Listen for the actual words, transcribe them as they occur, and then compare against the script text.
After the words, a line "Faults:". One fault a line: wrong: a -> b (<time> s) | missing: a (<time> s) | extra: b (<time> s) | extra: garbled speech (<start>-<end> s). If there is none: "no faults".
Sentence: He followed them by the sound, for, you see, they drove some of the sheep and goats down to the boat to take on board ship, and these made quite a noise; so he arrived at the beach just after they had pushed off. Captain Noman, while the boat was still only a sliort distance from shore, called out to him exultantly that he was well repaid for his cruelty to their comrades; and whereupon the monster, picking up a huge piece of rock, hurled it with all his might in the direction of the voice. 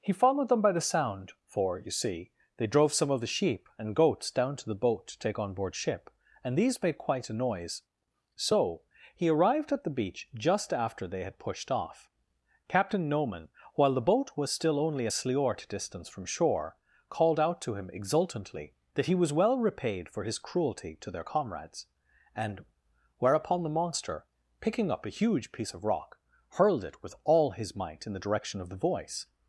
He followed them by the sound, for, you see, they drove some of the sheep and goats down to the boat to take on board ship, and these made quite a noise; so he arrived at the beach just after they had pushed off. Captain Noman, while the boat was still only a sliort distance from shore, called out to him exultantly that he was well repaid for his cruelty to their comrades; and whereupon the monster, picking up a huge piece of rock, hurled it with all his might in the direction of the voice.
Faults:
no faults